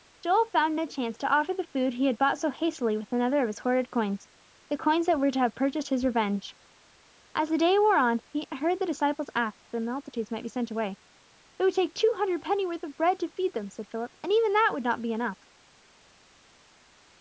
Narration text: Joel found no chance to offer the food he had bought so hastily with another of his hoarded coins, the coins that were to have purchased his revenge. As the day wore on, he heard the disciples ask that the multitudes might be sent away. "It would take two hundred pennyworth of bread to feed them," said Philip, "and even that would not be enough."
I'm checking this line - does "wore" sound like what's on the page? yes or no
yes